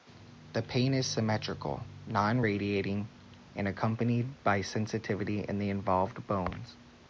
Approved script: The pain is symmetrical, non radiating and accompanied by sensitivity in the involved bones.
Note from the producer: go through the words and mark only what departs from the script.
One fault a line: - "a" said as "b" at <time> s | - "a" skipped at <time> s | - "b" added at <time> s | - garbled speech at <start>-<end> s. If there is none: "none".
none